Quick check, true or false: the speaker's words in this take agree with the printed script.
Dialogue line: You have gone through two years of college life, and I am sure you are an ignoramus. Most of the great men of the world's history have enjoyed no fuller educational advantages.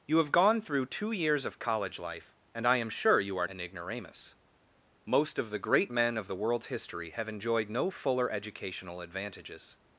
true